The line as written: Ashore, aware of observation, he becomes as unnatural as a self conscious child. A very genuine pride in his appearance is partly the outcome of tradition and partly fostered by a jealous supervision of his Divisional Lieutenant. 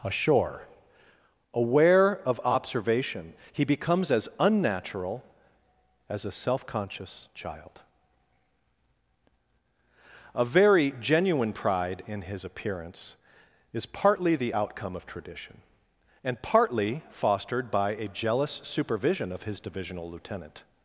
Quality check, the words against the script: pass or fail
pass